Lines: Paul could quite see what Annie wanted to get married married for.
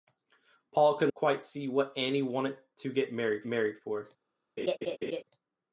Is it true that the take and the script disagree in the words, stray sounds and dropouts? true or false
true